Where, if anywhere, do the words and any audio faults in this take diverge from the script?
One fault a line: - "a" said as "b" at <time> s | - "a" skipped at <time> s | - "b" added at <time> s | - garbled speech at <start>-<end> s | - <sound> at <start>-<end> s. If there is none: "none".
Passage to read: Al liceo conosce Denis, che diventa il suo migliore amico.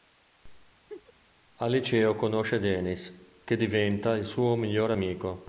- laugh at 0.9-1.1 s